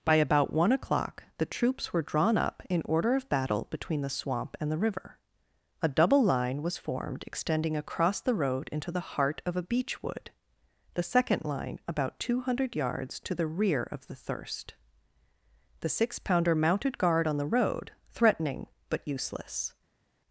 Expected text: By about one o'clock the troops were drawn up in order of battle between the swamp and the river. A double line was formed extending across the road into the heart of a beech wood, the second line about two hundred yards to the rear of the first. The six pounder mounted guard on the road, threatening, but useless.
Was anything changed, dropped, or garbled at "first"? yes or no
yes